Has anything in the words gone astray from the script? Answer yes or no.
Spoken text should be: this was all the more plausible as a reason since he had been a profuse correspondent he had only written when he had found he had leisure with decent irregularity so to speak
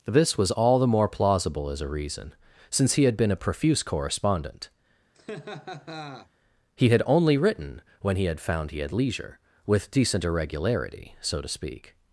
no